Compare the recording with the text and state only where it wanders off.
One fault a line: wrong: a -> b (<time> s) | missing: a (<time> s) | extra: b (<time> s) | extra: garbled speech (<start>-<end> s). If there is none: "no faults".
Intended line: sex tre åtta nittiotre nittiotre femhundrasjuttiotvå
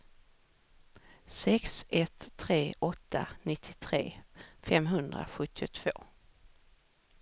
extra: ett (1.9 s)
missing: nittiotre (4.1 s)